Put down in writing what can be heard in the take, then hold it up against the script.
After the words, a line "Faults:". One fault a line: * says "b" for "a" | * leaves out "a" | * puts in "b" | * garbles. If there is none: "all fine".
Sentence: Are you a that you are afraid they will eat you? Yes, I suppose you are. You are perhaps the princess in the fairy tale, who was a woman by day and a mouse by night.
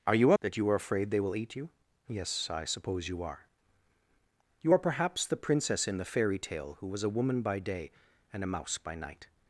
Are you a that you are afraid they will eat you? Yes, I suppose you are. You are perhaps the princess in the fairy tale, who was a woman by day and a mouse by night.
Faults:
all fine